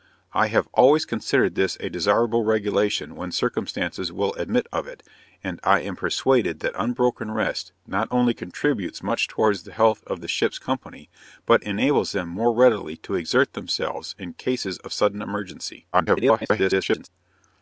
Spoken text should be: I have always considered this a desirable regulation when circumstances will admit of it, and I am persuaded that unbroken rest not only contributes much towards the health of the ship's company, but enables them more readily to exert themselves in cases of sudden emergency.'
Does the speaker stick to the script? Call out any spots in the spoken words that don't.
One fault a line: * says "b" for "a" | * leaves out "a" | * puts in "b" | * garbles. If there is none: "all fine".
* garbles